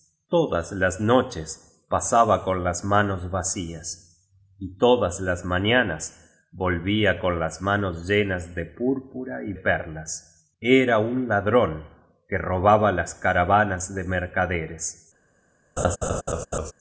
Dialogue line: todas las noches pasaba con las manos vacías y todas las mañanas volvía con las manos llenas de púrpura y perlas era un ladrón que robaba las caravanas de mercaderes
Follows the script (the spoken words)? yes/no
yes